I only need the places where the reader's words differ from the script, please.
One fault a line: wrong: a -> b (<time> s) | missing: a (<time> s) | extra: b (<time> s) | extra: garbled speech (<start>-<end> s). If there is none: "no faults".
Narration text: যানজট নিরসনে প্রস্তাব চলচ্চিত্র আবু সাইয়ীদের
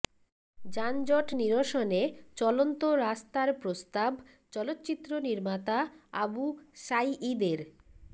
extra: চলন্ত রাস্তার (2.4 s)
extra: নির্মাতা (5.3 s)